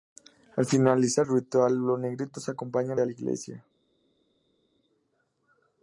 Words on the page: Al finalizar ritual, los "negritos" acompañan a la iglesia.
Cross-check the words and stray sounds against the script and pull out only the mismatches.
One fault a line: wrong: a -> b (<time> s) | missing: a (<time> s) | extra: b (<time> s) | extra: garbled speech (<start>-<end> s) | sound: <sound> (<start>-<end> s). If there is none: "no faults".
no faults